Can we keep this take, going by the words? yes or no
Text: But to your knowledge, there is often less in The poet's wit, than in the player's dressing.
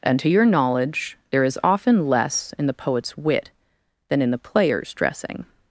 no